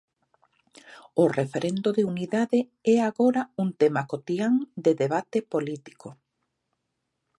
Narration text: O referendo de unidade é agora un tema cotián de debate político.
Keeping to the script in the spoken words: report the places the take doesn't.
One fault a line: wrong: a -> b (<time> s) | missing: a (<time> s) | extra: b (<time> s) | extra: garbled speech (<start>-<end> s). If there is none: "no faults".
no faults